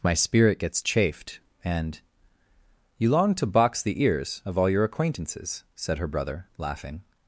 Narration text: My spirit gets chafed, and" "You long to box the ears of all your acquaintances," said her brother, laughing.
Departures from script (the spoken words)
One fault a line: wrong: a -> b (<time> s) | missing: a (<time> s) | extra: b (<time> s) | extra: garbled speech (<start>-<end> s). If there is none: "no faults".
no faults